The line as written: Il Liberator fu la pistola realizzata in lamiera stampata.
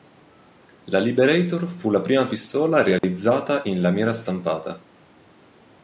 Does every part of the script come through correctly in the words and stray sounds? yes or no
no